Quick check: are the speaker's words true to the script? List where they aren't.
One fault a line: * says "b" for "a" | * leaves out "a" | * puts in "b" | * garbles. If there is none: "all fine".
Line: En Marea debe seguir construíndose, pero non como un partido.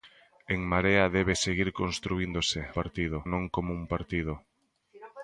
* says "partido" for "pero"